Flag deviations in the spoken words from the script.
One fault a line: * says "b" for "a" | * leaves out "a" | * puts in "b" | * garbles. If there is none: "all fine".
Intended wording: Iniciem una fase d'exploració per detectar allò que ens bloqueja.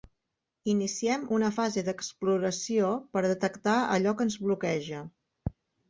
all fine